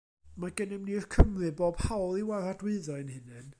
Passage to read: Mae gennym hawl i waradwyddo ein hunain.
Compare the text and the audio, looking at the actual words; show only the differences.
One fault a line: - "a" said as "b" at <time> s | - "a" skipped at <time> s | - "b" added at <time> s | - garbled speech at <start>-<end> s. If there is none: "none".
- "ni'r Cymry bob" added at 0.9 s